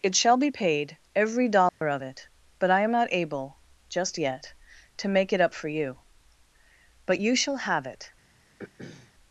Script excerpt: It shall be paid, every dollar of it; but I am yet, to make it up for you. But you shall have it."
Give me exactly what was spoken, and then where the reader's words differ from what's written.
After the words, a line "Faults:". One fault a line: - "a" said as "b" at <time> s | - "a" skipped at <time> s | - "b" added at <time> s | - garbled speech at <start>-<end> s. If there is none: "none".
It shall be paid, every dollar of it; but I am not able, just yet, to make it up for you. But you shall have it."
Faults:
- "not able just" added at 2.9 s